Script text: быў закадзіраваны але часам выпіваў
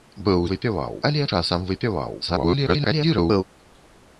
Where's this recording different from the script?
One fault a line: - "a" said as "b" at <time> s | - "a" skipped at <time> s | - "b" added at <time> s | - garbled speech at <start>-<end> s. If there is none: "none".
- "закадзіраваны" said as "выпіваў" at 0.5 s
- garbled speech at 2.2-3.4 s